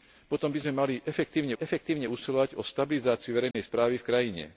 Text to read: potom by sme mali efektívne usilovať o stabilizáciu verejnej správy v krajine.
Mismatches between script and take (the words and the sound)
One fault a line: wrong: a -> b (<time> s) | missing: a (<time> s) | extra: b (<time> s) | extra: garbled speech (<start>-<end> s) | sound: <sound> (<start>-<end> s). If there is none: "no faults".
extra: efektívne (1.6 s)
sound: dropout (3.5-3.5 s)